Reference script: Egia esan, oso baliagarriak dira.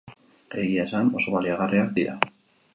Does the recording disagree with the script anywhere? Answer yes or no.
no